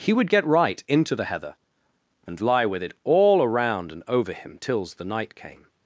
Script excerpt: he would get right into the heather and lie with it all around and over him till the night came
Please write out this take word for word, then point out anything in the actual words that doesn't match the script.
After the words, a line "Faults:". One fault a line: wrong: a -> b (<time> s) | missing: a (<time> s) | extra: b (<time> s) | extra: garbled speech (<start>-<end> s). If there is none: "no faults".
he would get right into the heather and lie with it all around and over him tills the night came
Faults:
wrong: till -> tills (4.6 s)